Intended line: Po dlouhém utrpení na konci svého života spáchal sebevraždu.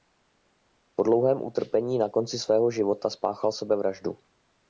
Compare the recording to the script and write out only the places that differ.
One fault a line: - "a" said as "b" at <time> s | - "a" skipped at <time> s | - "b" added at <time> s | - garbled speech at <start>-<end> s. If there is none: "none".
none